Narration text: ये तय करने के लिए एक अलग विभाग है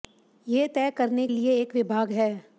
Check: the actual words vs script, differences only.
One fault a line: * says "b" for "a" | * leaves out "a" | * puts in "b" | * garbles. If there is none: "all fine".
* leaves out "के"
* leaves out "अलग"